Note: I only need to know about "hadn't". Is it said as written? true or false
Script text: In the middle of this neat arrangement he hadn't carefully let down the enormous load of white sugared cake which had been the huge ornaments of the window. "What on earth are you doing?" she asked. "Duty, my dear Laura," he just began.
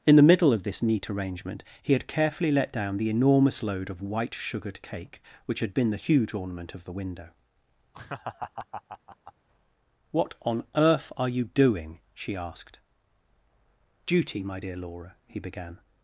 false